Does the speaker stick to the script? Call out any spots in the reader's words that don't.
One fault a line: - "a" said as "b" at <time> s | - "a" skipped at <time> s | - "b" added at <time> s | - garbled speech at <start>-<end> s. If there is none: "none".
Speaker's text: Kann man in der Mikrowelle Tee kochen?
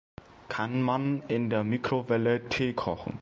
none